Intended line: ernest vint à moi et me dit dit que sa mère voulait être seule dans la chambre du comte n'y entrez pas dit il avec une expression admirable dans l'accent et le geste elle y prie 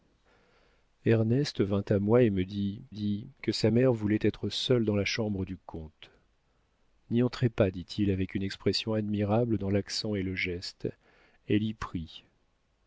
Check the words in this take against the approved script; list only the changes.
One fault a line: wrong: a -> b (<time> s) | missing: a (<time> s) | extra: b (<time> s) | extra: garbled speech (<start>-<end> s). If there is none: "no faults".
no faults